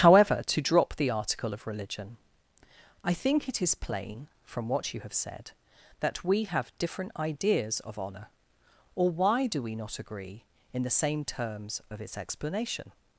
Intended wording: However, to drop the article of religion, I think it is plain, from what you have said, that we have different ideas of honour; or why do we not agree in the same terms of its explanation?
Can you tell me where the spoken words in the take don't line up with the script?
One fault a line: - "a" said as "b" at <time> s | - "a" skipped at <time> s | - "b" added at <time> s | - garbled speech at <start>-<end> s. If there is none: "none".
none